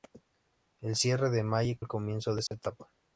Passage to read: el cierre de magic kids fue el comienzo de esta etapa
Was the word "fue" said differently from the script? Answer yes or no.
yes